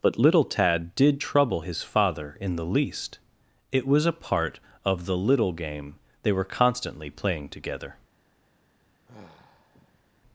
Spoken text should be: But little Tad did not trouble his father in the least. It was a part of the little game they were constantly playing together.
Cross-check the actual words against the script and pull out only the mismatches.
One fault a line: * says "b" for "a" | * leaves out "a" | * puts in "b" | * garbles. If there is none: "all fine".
* leaves out "not"